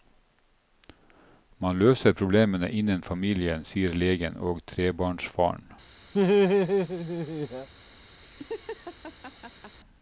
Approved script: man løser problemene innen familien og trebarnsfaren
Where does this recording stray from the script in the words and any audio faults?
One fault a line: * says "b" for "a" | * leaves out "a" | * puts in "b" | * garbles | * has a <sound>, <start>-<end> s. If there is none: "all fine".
* puts in "sier legen"
* has a laugh, 6.1-7.7 s
* has a laugh, 8.2-9.8 s